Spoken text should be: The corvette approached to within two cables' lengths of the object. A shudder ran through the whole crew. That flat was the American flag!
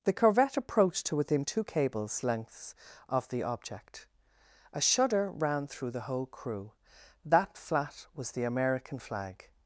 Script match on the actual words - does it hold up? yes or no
yes